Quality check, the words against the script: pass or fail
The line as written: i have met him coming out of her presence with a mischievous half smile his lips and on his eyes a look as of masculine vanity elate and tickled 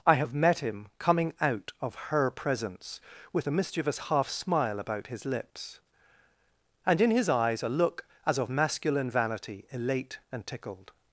fail